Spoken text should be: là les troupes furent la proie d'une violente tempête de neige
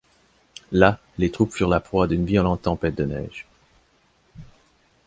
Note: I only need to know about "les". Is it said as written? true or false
true